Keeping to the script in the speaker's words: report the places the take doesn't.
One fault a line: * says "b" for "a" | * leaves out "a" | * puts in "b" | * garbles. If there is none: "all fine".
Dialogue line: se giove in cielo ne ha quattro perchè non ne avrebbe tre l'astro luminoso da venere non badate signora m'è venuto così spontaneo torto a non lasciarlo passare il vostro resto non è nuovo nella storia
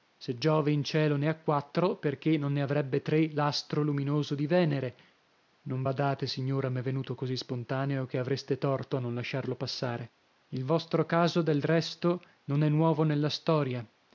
* says "di" for "da"
* puts in "che avreste"
* puts in "caso del"